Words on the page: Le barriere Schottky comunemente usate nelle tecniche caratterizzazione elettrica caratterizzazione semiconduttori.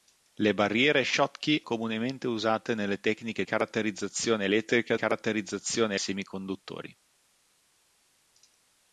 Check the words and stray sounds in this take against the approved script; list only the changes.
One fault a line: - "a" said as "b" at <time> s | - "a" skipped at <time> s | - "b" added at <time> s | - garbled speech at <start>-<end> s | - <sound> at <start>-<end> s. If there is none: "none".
none